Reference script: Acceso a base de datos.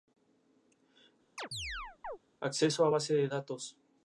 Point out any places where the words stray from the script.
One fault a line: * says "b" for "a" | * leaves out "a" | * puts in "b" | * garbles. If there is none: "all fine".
all fine